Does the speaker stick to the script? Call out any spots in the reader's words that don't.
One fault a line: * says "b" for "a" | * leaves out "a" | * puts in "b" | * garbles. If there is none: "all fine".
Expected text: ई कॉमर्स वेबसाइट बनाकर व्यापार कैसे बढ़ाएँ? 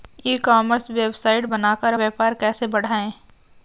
all fine